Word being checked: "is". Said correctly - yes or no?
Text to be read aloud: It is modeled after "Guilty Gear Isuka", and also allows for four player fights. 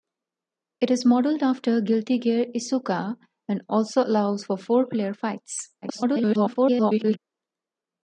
yes